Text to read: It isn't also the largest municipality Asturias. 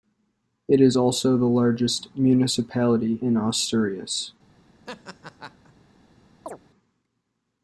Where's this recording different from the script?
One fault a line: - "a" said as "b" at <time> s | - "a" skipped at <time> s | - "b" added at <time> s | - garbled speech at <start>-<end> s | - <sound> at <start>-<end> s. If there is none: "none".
- "isn't" said as "is" at 0.8 s
- "in" added at 3.2 s
- laugh at 4.9-5.7 s
- chirp at 6.5-6.6 s